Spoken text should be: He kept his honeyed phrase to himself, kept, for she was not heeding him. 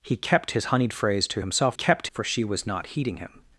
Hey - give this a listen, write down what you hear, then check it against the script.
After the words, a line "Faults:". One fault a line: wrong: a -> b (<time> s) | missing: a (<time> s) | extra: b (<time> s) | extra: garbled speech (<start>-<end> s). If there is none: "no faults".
He kept his honeyed phrase to himself, kept, for she was not heeding him.
Faults:
no faults